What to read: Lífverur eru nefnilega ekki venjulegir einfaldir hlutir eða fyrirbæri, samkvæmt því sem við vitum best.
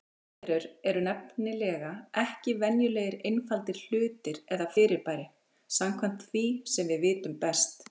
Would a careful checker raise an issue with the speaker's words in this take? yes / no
no